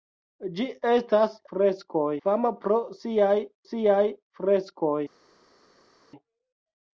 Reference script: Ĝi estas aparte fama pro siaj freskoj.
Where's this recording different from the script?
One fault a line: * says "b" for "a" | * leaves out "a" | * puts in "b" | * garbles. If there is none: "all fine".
* says "freskoj" for "aparte"
* puts in "siaj"